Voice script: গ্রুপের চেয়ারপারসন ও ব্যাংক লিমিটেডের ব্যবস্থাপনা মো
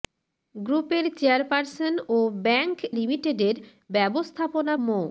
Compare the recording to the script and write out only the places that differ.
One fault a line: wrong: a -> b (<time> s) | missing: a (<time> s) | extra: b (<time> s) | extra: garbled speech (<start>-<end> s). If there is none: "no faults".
no faults